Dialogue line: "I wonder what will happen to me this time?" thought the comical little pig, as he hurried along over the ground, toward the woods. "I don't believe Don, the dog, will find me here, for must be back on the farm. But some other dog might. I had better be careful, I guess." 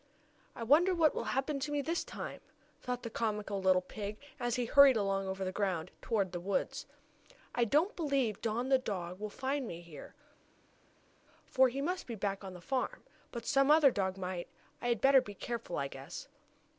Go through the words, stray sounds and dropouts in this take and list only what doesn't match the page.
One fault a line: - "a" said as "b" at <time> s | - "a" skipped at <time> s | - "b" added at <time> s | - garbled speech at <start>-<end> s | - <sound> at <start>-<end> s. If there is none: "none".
- "he" added at 11.7 s